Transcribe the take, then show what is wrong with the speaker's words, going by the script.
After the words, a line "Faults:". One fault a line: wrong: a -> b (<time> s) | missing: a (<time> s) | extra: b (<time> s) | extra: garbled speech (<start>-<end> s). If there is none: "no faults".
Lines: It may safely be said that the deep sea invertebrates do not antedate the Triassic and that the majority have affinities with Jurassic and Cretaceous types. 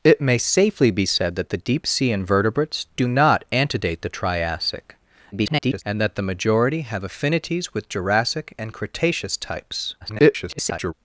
It may safely be said that the deep sea invertebrates do not antedate the Triassic [garbled] and that the majority have affinities with Jurassic and Cretaceous types. [garbled]
Faults:
extra: garbled speech (5.3-5.8 s)
extra: garbled speech (10.0-10.9 s)